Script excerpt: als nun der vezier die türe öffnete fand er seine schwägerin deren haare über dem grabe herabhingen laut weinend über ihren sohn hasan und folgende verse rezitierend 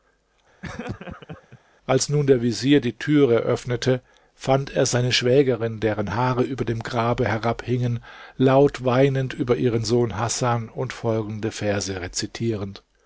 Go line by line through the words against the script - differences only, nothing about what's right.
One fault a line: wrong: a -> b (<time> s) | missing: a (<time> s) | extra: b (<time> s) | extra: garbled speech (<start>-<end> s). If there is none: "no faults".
no faults